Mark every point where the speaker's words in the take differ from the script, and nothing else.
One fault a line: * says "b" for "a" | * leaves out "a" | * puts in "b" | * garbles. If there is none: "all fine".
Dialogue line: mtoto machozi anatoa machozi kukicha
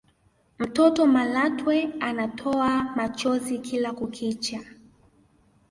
* says "malatwe" for "machozi"
* puts in "kila"